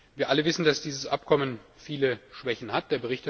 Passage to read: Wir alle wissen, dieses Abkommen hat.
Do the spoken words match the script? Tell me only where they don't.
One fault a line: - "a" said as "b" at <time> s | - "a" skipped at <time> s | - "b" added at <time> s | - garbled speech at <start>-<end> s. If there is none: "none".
- "dass" added at 0.7 s
- "viele Schwächen" added at 1.8 s